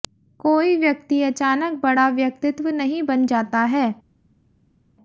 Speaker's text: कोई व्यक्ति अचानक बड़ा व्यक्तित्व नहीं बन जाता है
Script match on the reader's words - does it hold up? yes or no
yes